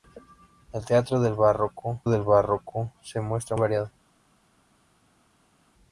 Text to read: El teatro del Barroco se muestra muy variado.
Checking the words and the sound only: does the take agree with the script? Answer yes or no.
no